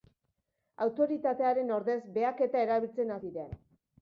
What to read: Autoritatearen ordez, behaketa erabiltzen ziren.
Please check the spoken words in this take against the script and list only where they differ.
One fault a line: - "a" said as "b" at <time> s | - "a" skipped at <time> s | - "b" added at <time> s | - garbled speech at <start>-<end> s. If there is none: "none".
none